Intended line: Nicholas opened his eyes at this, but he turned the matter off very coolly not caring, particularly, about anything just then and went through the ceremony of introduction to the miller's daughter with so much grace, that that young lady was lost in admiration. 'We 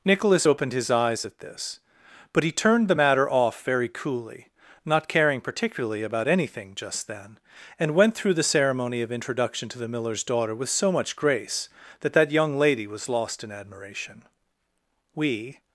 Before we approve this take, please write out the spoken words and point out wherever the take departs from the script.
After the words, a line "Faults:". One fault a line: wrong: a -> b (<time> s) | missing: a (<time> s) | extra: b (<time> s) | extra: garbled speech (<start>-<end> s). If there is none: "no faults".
Nicholas opened his eyes at this, but he turned the matter off very coolly not caring, particularly, about anything just then and went through the ceremony of introduction to the miller's daughter with so much grace, that that young lady was lost in admiration. 'We
Faults:
no faults